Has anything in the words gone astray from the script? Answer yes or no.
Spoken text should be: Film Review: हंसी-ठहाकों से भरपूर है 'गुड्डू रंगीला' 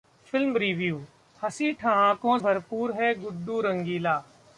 yes